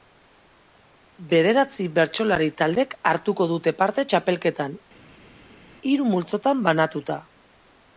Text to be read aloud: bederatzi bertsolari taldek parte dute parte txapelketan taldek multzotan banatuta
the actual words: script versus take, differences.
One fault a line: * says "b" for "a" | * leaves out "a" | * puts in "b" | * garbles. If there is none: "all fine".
* says "hartuko" for "parte"
* says "hiru" for "taldek"